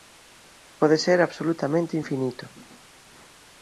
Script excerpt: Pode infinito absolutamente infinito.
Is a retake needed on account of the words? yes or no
yes